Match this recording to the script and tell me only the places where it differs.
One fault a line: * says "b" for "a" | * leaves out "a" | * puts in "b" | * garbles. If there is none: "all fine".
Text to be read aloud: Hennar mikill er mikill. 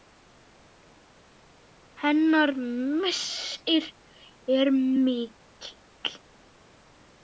* says "missir" for "mikill"